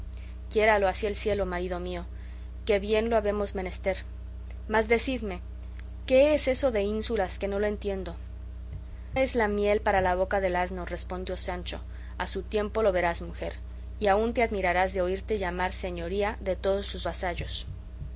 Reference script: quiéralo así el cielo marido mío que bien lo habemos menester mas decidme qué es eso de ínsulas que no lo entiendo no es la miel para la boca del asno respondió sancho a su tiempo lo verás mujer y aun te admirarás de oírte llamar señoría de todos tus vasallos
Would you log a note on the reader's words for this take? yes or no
yes